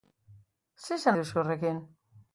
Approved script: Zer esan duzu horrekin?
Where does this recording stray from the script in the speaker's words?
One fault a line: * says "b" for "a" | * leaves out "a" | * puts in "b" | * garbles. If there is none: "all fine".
all fine